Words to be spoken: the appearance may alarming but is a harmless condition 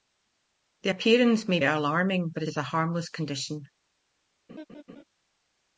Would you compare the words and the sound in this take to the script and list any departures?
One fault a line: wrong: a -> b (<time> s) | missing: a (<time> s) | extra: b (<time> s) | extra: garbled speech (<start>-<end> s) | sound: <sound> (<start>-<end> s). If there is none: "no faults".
sound: laugh (4.5-5.0 s)